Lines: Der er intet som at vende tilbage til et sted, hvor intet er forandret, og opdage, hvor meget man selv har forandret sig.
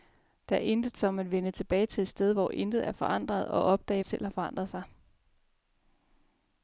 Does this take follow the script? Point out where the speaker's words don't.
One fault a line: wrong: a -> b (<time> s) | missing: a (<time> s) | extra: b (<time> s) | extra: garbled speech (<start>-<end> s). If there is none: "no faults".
missing: hvor meget man (4.0 s)